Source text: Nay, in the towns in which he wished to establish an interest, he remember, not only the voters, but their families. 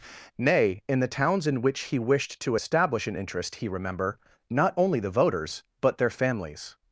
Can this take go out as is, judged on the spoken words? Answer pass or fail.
pass